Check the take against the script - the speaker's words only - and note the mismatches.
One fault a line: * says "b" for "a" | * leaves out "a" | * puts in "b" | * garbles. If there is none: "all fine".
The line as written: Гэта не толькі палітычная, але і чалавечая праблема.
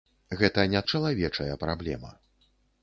* leaves out "толькі палітычная але"